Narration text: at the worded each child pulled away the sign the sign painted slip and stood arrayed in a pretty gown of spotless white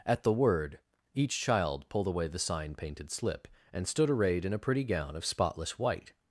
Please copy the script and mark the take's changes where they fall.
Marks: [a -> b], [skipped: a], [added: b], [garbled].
at the [worded -> word] each child pulled away the sign [skipped: the sign] painted slip and stood arrayed in a pretty gown of spotless white